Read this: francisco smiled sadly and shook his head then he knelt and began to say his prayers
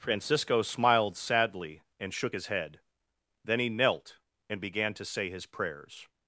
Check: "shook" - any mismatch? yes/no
no